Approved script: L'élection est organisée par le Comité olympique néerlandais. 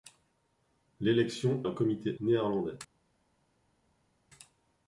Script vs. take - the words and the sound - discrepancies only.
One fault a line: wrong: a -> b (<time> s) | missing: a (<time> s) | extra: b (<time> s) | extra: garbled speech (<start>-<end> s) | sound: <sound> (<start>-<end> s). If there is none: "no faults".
missing: est organisée par (1.6 s)
missing: olympique (2.2 s)